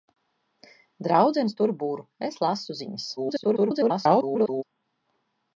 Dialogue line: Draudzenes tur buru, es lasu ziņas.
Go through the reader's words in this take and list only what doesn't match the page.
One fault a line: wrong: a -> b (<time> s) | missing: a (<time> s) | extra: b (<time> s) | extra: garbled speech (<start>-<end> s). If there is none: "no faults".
extra: garbled speech (3.2-4.6 s)